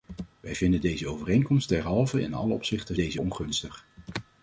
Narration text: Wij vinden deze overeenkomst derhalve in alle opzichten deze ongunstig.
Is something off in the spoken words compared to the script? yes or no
no